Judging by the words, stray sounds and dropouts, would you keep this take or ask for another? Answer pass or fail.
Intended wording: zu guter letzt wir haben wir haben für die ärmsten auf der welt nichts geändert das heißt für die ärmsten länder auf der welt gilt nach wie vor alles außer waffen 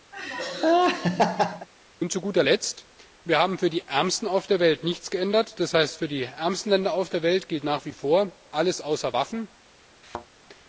fail